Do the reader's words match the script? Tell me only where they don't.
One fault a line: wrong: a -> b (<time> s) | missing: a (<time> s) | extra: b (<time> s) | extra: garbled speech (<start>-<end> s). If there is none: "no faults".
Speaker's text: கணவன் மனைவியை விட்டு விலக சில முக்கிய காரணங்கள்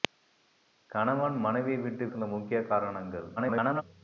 missing: விலக (2.1 s)
extra: garbled speech (3.4-3.8 s)